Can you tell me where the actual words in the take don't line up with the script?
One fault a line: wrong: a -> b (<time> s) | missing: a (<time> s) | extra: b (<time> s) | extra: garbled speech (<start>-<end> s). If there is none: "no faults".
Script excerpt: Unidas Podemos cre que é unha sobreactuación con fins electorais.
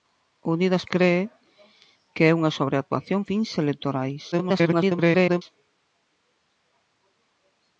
missing: Podemos (0.8 s)
missing: con (3.2 s)
extra: garbled speech (4.3-5.4 s)